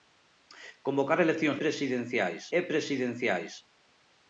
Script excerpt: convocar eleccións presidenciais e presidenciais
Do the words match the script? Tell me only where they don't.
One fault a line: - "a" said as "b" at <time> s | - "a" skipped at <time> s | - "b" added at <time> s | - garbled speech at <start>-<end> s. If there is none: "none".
none